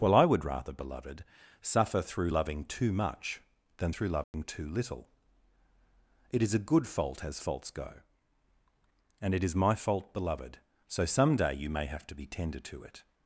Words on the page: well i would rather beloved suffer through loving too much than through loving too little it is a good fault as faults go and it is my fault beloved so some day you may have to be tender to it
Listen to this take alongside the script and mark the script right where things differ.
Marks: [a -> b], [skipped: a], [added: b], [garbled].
well i would rather beloved suffer through loving too much than through loving too little it is a good fault as faults go and it is my fault beloved so some day you may have to be tender to it